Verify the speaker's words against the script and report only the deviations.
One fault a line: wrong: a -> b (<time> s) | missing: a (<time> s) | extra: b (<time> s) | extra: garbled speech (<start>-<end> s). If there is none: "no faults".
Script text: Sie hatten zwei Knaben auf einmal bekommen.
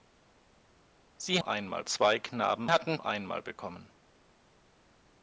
wrong: hatten -> einmal (1.4 s)
wrong: auf -> hatten (2.7 s)